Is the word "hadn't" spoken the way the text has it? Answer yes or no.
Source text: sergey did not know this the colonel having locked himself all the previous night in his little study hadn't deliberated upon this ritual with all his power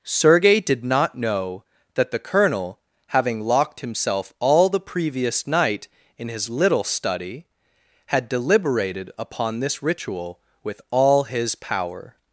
no